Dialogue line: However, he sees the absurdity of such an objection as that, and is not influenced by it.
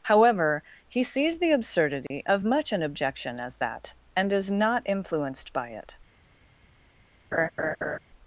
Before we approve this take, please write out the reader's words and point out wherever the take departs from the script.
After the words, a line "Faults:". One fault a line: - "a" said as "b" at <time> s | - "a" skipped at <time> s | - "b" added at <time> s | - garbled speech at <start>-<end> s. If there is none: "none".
However, he sees the absurdity of much an objection as that, and is not influenced by it.
Faults:
- "such" said as "much" at 2.4 s